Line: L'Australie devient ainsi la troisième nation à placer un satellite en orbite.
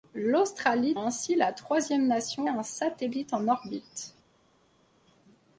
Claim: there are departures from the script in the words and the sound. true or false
true